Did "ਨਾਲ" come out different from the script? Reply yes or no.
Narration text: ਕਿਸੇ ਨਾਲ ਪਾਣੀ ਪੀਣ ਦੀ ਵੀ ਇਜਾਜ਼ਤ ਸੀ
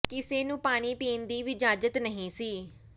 yes